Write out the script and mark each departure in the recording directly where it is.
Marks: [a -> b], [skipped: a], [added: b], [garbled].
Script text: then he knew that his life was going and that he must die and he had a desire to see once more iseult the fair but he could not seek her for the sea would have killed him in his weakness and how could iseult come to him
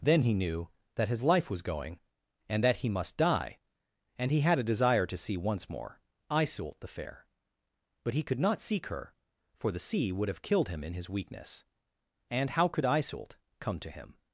then he knew that his life was going and that he must die and he had a desire to see once more iseult the fair but he could not seek her for the sea would have killed him in his weakness and how could iseult come to him